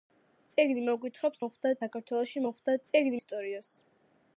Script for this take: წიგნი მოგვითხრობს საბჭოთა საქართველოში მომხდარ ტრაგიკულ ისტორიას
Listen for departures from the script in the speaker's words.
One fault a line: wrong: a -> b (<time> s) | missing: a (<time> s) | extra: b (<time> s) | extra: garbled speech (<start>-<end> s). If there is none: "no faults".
wrong: საბჭოთა -> მომხდარ (1.4 s)
wrong: ტრაგიკულ -> წიგნი (2.9 s)